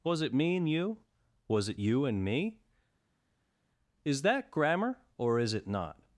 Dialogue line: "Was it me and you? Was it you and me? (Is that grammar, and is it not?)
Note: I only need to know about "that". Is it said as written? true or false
true